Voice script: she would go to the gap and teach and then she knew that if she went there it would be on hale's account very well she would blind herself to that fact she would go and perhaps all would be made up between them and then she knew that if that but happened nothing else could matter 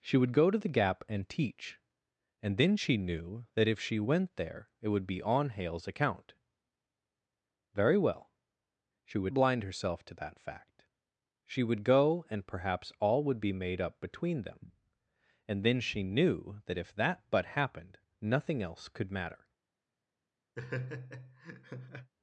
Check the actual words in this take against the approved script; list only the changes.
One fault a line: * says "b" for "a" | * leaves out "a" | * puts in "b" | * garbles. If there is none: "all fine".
all fine